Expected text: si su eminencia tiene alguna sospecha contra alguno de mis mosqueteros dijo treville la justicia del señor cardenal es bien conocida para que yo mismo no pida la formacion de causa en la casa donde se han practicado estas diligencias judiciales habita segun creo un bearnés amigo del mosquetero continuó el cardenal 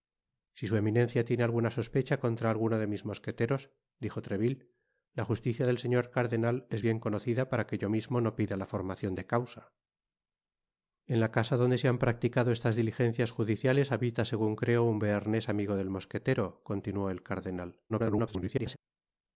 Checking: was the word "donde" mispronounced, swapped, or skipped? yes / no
no